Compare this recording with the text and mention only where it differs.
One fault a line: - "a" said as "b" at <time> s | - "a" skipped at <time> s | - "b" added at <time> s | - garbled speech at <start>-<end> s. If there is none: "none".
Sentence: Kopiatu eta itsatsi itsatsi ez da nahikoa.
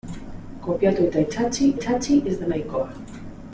none